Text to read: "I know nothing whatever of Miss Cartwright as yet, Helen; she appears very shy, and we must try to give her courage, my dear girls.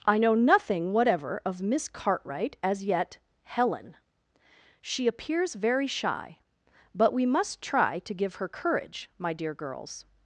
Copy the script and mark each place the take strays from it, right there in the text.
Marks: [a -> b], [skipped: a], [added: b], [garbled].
"I know nothing whatever of Miss Cartwright as yet, Helen; she appears very shy, [and -> but] we must try to give her courage, my dear girls.